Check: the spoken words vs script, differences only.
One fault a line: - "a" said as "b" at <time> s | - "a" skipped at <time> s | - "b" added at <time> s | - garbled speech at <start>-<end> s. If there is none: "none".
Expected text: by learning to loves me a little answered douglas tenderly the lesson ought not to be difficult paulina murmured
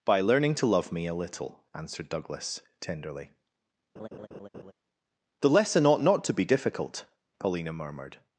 - "loves" said as "love" at 0.7 s